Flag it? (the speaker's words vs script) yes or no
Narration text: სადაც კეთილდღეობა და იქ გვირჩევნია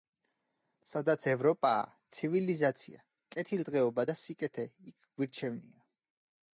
yes